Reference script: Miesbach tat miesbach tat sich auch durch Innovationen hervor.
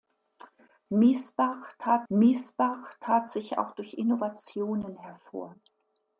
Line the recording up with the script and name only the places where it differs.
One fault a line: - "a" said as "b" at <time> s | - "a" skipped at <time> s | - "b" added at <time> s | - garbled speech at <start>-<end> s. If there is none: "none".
none